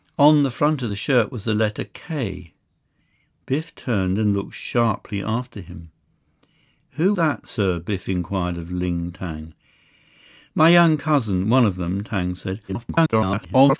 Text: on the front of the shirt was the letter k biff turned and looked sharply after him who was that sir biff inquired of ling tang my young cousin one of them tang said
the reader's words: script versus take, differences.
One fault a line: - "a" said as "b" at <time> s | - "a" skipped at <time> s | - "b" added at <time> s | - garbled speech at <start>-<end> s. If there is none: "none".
- "was" skipped at 7.1 s
- garbled speech at 12.7-13.8 s